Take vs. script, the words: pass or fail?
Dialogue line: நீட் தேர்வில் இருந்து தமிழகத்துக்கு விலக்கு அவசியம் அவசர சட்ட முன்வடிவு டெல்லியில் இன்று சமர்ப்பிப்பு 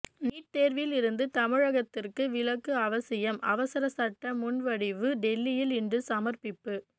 pass